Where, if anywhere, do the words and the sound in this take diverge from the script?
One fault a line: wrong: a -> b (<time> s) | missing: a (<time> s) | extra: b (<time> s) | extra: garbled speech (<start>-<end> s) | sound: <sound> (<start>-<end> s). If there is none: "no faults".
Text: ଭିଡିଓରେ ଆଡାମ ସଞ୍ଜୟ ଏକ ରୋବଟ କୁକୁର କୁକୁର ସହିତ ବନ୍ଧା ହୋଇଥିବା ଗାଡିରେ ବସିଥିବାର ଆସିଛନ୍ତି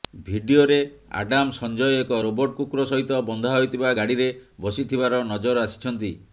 missing: କୁକୁର (2.9 s)
extra: ନଜର (5.3 s)